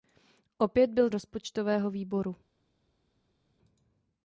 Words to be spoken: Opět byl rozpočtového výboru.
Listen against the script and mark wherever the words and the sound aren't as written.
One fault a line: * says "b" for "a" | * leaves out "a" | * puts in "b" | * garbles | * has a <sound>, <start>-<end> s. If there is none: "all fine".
all fine